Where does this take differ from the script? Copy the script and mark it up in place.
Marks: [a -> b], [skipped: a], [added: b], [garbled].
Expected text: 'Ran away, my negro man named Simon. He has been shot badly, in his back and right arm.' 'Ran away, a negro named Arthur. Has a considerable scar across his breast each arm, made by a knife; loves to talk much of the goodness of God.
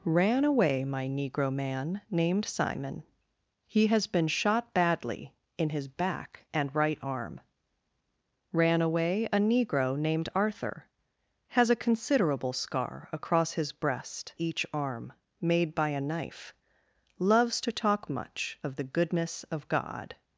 'Ran away, my negro man named Simon. He has been shot badly, in his back and right arm.' 'Ran away, a negro named Arthur. Has a considerable scar across his breast each arm, made by a knife; loves to talk much of the goodness of God.